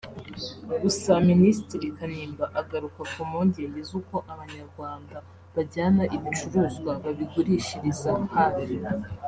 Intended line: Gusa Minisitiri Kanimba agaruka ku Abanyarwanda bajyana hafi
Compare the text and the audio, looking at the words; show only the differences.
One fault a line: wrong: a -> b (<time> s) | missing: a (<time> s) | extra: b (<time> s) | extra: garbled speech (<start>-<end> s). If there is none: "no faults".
extra: mpungenge z'uko (3.3 s)
extra: ibicuruzwa babigurishiriza (6.2 s)